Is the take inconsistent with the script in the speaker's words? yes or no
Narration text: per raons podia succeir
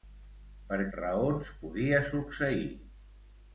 no